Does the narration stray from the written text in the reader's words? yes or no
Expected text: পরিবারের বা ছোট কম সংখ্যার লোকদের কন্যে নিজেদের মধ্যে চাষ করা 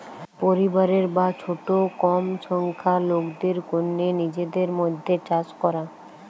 no